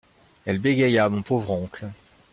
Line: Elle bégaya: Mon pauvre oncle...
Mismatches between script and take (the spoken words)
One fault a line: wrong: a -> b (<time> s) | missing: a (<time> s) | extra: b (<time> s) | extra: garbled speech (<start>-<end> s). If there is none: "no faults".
no faults